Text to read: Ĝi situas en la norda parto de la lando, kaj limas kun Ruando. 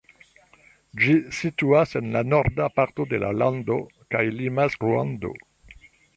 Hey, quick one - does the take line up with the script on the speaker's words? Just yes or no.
no